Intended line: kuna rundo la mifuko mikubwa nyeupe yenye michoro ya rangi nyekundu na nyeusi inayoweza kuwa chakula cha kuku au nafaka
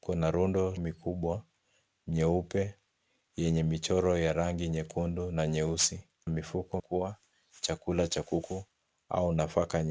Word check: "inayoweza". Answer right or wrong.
wrong